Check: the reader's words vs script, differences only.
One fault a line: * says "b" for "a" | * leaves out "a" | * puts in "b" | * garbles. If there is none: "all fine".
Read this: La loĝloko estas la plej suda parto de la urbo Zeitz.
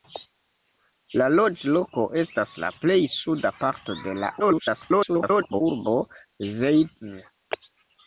* garbles